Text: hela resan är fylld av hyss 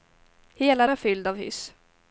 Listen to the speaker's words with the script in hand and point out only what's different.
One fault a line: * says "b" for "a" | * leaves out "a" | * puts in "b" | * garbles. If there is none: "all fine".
* leaves out "resan"